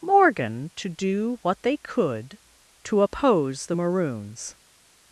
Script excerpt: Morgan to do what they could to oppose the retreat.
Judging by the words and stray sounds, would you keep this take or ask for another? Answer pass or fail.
fail